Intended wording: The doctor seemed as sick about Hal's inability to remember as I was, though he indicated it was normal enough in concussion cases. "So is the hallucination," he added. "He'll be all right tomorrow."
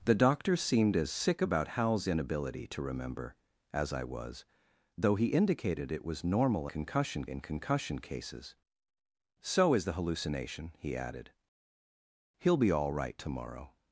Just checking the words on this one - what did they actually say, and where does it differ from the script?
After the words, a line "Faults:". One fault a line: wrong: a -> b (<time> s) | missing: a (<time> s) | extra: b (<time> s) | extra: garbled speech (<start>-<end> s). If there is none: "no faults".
The doctor seemed as sick about Hal's inability to remember as I was, though he indicated it was normal concussion in concussion cases. "So is the hallucination," he added. "He'll be all right tomorrow."
Faults:
wrong: enough -> concussion (6.7 s)